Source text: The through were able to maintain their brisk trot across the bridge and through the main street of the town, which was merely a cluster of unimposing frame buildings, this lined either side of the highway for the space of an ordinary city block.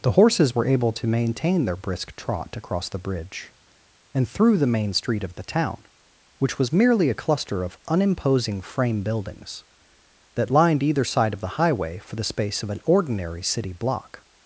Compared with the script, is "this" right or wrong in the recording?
wrong